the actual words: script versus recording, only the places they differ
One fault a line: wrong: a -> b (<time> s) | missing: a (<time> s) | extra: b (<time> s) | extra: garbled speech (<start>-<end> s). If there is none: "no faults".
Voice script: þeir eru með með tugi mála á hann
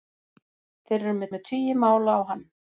no faults